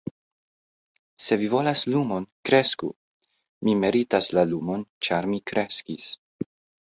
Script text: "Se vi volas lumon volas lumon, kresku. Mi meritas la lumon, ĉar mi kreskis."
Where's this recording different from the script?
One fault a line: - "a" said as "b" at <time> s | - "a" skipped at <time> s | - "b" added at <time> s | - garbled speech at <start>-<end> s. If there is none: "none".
- "volas lumon" skipped at 2.2 s